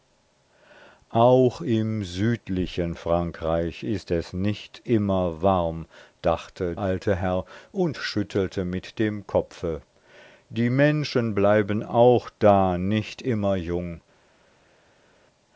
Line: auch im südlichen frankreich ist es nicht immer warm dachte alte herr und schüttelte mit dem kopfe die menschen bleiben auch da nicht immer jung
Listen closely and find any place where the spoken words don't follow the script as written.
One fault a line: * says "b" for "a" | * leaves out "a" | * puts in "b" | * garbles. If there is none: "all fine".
all fine